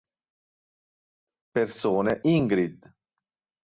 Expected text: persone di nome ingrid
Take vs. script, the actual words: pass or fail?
fail